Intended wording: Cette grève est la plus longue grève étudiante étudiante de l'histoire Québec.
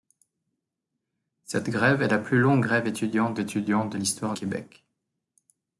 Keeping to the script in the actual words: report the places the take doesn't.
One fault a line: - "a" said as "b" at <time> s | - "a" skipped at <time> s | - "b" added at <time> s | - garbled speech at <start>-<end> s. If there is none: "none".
none